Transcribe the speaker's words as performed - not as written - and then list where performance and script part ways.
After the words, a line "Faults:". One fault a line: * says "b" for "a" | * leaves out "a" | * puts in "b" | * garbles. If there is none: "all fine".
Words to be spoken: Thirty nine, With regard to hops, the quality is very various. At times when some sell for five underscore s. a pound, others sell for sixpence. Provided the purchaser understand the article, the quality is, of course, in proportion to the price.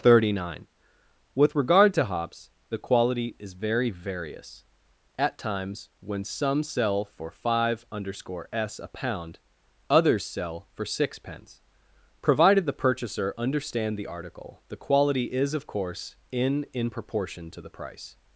Thirty nine, With regard to hops, the quality is very various. At times when some sell for five underscore s. a pound, others sell for sixpence. Provided the purchaser understand the article, the quality is, of course, in in proportion to the price.
Faults:
* puts in "in"